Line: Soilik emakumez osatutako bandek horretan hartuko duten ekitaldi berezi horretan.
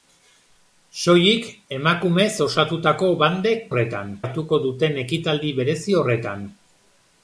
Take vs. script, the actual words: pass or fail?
pass